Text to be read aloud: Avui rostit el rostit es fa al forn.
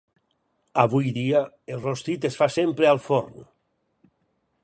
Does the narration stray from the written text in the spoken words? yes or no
yes